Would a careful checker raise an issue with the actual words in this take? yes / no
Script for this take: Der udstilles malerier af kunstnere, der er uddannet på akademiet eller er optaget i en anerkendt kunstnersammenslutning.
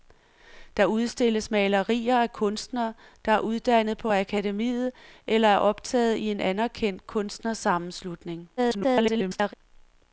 yes